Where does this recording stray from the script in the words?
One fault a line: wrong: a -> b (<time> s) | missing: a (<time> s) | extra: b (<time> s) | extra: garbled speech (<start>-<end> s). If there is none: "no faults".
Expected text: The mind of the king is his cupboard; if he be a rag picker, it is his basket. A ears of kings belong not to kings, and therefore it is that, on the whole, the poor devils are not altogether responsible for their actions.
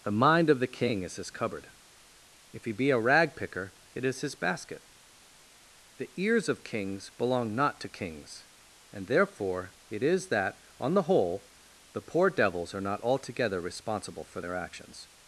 wrong: A -> The (6.0 s)